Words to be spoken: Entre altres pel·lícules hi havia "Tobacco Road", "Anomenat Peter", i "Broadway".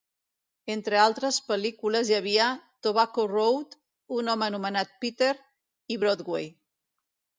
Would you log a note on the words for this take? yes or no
yes